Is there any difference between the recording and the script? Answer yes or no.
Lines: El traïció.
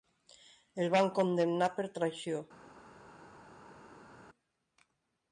yes